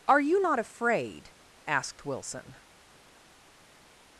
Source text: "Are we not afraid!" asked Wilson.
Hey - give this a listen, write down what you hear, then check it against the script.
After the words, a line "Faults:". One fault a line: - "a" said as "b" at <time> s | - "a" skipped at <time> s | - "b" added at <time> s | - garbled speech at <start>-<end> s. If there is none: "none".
"Are you not afraid!" asked Wilson.
Faults:
- "we" said as "you" at 0.2 s